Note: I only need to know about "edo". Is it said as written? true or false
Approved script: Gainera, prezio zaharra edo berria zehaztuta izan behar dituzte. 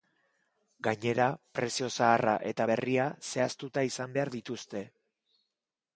false